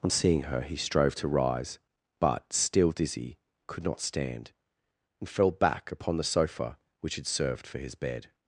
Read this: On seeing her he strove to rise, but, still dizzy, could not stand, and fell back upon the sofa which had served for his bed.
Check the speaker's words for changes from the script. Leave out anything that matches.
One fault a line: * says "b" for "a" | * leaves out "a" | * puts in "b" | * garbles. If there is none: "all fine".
all fine